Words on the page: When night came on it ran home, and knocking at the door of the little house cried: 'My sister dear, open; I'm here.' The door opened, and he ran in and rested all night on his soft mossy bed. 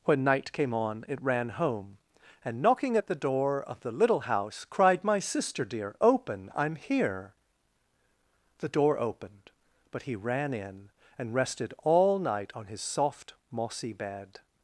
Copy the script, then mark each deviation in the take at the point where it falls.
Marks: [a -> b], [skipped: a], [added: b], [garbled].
When night came on it ran home, and knocking at the door of the little house cried: 'My sister dear, open; I'm here.' The door opened, [and -> but] he ran in and rested all night on his soft mossy bed.